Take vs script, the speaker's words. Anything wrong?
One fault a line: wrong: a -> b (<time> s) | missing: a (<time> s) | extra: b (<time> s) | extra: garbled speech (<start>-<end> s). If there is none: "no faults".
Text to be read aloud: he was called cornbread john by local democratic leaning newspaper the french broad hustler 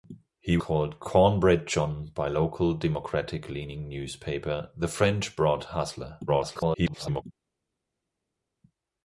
missing: was (0.6 s)
extra: garbled speech (6.3-7.2 s)